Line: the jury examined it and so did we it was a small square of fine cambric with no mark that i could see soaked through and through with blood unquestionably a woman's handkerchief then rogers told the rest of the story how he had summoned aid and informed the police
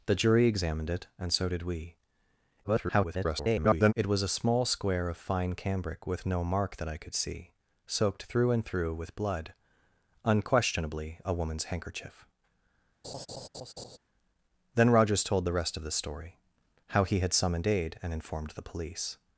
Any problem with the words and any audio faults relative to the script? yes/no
yes